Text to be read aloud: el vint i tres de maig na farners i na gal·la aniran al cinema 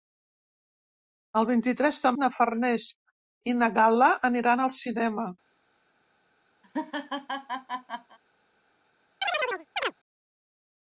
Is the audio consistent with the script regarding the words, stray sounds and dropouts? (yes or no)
no